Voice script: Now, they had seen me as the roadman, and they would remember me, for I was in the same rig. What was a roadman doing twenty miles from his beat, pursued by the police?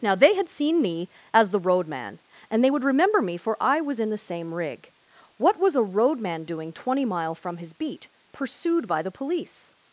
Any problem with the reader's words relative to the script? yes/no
yes